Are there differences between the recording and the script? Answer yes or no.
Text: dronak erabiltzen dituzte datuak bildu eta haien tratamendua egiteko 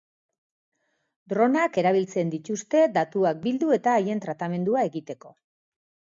no